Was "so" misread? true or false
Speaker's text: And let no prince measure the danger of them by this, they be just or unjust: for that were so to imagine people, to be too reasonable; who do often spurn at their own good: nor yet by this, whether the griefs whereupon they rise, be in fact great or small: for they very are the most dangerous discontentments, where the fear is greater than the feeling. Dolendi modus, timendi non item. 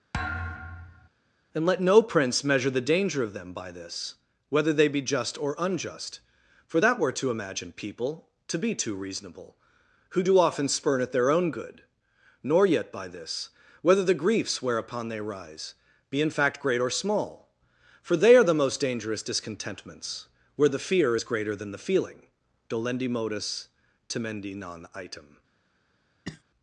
true